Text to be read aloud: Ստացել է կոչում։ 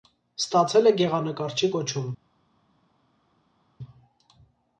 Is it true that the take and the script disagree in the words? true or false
true